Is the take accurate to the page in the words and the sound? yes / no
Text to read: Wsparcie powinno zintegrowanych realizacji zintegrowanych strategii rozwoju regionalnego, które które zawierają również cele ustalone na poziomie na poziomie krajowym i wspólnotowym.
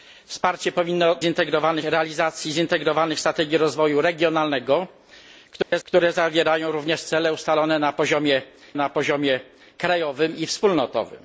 no